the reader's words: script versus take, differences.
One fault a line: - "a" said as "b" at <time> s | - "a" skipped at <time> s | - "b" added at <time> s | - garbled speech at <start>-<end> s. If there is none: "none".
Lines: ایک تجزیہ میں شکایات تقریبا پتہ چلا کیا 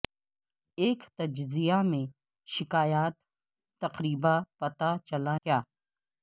none